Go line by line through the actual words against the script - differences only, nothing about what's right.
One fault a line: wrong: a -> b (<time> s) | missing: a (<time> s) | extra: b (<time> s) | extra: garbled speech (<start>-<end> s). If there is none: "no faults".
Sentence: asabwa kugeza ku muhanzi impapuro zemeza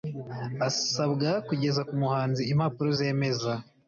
no faults